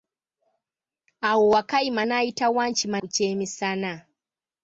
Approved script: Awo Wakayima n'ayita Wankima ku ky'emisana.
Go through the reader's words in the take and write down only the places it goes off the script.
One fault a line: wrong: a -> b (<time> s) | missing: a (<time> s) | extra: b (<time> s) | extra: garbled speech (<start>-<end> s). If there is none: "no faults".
no faults